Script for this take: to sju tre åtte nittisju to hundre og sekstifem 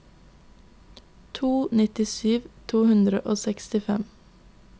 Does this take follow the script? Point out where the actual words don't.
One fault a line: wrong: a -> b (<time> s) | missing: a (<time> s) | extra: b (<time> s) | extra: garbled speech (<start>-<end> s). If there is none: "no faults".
missing: sju tre åtte (1.5 s)